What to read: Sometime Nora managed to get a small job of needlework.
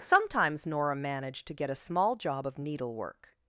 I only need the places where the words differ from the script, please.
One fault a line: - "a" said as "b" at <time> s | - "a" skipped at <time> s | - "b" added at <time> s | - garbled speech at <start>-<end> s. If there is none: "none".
- "Sometime" said as "Sometimes" at 0.0 s